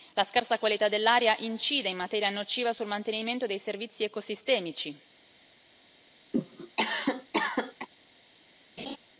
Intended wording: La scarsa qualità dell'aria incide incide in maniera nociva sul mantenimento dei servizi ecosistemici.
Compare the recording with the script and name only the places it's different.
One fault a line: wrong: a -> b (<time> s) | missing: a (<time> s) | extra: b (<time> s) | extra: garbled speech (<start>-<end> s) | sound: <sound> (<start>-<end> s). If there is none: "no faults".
missing: incide (1.9 s)
sound: cough (6.3-7.9 s)
sound: laugh (8.8-9.0 s)